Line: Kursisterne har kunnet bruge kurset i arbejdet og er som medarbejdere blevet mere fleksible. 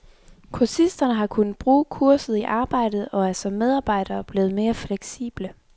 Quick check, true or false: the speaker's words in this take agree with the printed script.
true